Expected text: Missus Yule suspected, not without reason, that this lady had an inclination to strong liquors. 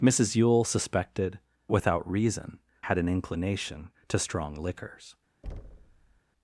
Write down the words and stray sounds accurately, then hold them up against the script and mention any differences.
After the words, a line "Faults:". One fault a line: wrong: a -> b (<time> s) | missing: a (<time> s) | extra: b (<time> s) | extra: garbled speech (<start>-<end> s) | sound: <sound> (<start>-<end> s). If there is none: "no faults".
Missus Yule suspected, without reason, had an inclination to strong liquors.
Faults:
missing: not (1.4 s)
missing: that this lady (2.6 s)
sound: thud (5.4-6.2 s)